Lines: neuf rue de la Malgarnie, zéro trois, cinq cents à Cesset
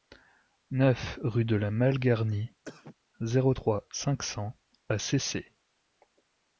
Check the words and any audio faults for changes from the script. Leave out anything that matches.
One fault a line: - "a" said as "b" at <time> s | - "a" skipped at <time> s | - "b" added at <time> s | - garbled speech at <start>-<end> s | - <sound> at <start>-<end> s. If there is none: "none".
- cough at 2.6-3.0 s